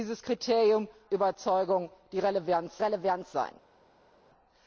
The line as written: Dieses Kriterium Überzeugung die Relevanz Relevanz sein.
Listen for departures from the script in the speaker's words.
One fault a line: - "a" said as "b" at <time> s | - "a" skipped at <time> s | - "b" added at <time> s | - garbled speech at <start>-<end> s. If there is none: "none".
none